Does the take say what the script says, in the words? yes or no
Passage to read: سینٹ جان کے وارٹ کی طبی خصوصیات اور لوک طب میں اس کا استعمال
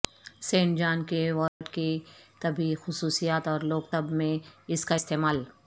yes